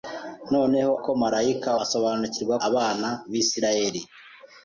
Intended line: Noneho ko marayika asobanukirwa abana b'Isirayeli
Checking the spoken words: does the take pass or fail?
pass